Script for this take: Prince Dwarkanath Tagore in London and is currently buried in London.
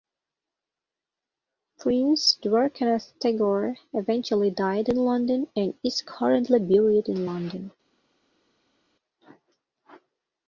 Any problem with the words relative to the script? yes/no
yes